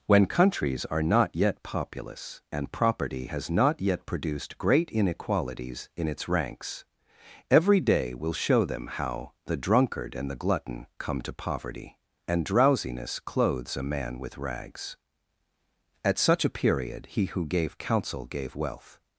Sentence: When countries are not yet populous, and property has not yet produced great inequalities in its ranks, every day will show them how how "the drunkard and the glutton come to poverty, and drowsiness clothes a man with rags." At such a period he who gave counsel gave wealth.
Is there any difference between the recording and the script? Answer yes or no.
yes